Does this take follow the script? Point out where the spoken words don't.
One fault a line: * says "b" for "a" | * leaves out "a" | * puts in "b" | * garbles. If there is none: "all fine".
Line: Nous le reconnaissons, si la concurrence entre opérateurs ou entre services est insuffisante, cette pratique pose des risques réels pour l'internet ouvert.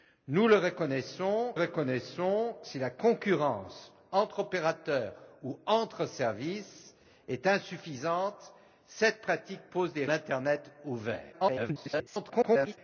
* puts in "reconnaissons"
* leaves out "risques réels pour"
* garbles